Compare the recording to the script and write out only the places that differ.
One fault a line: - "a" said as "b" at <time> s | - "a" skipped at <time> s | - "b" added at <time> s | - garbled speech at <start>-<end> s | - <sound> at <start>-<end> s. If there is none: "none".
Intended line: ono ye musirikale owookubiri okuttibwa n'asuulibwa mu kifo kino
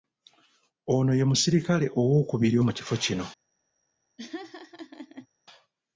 - "okuttibwa n'asuulibwa" skipped at 2.6 s
- laugh at 4.2-5.3 s